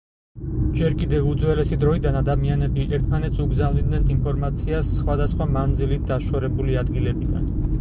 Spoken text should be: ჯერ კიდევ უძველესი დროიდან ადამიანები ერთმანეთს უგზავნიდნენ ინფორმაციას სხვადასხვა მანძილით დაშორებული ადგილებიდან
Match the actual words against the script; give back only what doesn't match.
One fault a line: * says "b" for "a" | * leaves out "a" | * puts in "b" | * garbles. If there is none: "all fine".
all fine